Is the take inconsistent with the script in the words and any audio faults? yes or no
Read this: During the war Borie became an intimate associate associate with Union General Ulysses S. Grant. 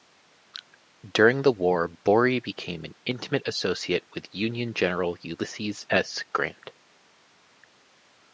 yes